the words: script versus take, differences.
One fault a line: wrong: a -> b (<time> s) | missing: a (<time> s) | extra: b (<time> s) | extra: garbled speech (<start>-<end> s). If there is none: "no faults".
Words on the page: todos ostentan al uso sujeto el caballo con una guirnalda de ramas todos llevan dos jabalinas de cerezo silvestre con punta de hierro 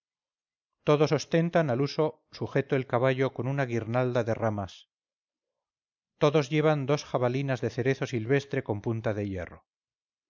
no faults